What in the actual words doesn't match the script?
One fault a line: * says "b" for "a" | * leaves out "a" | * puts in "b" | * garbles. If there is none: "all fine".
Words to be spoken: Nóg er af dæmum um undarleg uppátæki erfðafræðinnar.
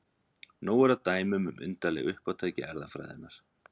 all fine